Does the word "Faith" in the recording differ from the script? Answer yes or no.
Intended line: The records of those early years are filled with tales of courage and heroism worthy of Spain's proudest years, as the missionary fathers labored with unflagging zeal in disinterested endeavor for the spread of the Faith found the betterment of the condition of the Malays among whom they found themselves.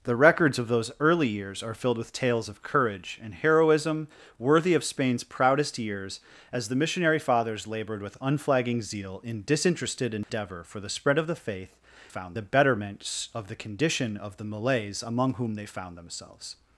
no